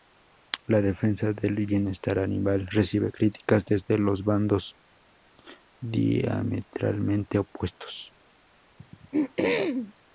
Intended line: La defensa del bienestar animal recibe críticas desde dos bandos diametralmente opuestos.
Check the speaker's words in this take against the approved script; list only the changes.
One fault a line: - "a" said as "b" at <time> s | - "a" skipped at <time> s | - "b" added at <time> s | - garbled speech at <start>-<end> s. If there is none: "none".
none